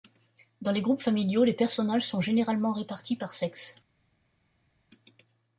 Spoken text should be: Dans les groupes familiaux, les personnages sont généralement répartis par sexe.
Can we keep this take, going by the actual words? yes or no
yes